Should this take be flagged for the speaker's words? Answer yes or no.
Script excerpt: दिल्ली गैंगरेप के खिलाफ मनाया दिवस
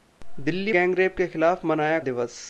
no